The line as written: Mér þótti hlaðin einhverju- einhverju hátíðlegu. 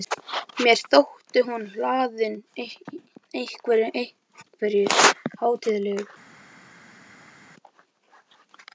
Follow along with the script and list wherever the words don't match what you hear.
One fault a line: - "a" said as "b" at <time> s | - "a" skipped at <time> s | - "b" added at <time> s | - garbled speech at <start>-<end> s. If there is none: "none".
- "hún" added at 1.5 s